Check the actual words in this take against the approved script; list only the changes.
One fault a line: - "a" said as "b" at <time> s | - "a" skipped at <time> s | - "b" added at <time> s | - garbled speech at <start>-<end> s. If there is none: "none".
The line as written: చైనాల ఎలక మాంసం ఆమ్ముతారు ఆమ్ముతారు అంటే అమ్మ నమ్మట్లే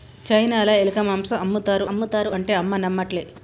none